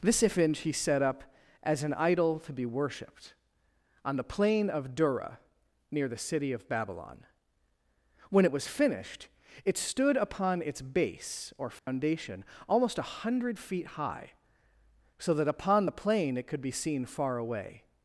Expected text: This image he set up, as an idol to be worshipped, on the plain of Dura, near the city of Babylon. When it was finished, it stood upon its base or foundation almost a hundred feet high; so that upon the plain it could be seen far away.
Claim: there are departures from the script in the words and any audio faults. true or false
true